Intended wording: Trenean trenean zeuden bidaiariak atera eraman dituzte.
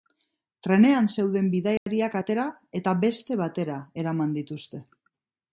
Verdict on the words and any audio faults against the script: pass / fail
fail